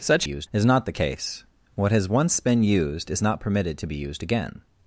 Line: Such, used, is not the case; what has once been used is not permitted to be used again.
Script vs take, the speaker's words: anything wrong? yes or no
no